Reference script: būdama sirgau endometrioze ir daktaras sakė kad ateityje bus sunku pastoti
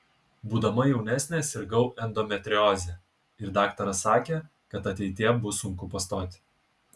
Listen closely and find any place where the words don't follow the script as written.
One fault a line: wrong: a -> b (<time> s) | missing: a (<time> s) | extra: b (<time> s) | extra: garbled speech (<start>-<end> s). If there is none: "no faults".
extra: jaunesnė (0.9 s)